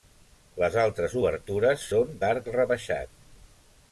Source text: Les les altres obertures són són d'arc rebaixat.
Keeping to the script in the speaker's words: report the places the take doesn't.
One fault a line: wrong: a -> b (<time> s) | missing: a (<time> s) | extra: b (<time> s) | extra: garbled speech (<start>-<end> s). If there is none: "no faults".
missing: les (0.8 s)
missing: són (2.1 s)